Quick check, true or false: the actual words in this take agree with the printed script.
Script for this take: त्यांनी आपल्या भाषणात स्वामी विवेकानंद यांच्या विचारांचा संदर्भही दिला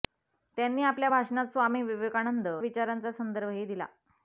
false